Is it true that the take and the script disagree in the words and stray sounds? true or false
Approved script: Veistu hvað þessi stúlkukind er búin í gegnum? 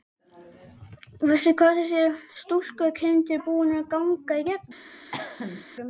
true